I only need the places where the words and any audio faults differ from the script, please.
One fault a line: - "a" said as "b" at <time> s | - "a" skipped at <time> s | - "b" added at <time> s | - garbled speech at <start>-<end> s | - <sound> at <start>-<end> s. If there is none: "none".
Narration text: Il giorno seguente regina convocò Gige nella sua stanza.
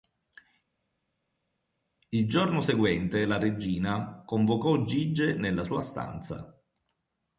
- "la" added at 3.2 s